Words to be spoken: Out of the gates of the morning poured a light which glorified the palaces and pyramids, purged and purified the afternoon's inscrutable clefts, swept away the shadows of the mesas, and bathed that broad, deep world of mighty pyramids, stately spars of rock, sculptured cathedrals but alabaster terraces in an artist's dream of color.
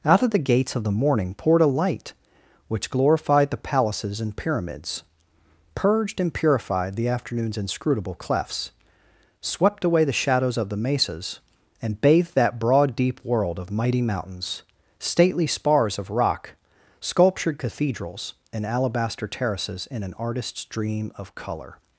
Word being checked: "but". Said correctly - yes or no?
no